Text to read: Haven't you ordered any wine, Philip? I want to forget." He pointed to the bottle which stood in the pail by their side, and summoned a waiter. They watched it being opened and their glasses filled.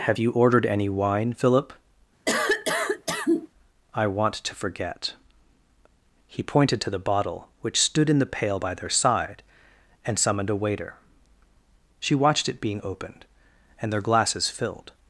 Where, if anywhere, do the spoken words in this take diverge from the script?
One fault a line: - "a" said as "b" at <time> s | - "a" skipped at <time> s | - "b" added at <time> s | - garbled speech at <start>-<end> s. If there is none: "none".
- "Haven't" said as "Have" at 0.1 s
- "They" said as "She" at 12.0 s